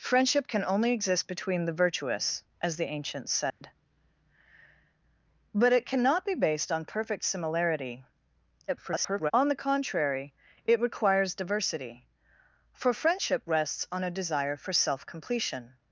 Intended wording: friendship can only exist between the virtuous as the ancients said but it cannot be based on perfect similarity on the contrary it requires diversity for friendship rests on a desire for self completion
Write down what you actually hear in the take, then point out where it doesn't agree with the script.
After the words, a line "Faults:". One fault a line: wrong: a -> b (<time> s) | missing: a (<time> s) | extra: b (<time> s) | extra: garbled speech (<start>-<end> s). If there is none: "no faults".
friendship can only exist between the virtuous as the ancients said but it cannot be based on perfect similarity [garbled] on the contrary it requires diversity for friendship rests on a desire for self completion
Faults:
extra: garbled speech (8.7-9.3 s)